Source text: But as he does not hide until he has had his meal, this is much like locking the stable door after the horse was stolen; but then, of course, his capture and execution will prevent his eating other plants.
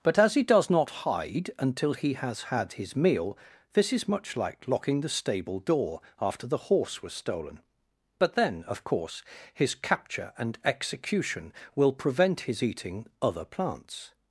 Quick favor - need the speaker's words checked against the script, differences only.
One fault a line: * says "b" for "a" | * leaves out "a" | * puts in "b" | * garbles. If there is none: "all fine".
all fine